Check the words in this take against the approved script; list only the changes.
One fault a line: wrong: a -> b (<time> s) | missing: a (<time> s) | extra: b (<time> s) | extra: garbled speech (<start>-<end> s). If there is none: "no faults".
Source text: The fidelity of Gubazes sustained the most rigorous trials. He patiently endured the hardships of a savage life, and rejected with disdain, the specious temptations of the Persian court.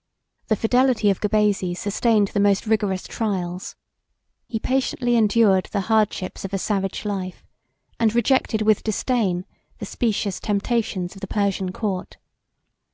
no faults